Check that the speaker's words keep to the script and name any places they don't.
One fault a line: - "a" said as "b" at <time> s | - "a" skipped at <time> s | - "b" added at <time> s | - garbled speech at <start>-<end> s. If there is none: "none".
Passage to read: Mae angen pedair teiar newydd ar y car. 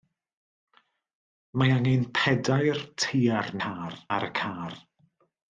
- "newydd" said as "car" at 3.6 s